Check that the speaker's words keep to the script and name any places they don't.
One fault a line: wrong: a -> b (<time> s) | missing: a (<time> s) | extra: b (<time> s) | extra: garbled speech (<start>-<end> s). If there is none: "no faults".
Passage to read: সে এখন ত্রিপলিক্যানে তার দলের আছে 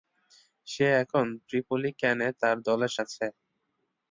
no faults